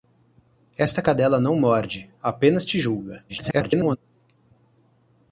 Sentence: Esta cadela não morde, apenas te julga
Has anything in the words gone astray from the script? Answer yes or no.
yes